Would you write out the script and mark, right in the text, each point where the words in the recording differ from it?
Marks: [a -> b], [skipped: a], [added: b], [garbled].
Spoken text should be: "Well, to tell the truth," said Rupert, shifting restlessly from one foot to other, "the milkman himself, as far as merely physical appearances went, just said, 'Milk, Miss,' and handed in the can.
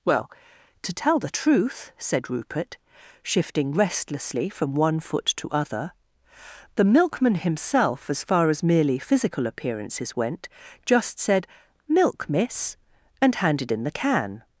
"Well, to tell the truth," said Rupert, shifting restlessly from one foot to other, "the milkman himself, as far as merely physical appearances went, just said, 'Milk, Miss,' and handed in the can.